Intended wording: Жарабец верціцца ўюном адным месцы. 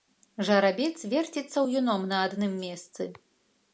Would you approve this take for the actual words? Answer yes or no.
no